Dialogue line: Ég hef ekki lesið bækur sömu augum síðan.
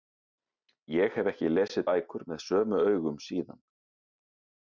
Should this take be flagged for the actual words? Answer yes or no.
yes